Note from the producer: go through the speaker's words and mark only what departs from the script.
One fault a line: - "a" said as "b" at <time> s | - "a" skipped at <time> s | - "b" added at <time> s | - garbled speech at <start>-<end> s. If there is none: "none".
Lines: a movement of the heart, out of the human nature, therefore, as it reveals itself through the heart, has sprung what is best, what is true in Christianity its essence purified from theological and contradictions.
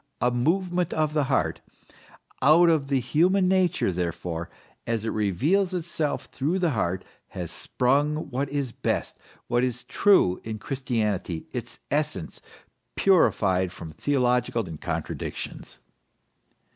none